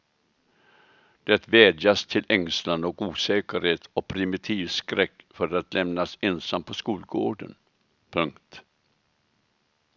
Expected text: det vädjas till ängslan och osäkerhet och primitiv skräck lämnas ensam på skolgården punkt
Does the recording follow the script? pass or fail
fail